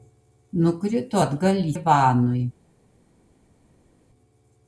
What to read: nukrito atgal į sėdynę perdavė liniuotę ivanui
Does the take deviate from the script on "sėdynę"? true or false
true